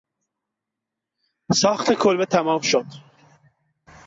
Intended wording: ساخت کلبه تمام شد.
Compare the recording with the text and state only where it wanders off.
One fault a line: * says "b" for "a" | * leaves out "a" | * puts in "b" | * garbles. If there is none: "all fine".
all fine